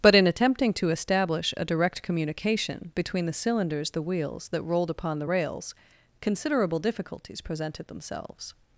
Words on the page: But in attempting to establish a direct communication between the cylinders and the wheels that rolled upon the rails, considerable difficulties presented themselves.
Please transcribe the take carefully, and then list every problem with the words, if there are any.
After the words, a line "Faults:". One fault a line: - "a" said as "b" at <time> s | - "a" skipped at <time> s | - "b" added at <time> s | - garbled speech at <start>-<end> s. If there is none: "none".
But in attempting to establish a direct communication between the cylinders the wheels that rolled upon the rails, considerable difficulties presented themselves.
Faults:
- "and" skipped at 3.9 s